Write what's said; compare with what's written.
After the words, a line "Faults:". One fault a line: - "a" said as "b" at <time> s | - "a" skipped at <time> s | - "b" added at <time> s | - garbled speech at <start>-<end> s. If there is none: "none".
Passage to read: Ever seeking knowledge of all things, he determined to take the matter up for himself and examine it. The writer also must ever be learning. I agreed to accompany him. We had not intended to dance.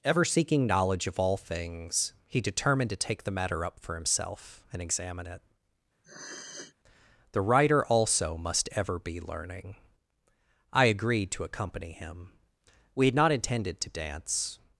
Ever seeking knowledge of all things, he determined to take the matter up for himself and examine it. The writer also must ever be learning. I agreed to accompany him. We had not intended to dance.
Faults:
none